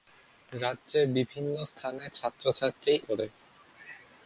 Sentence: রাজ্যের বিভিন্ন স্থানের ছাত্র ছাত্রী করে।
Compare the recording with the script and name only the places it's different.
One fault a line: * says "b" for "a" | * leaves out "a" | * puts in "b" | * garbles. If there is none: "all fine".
all fine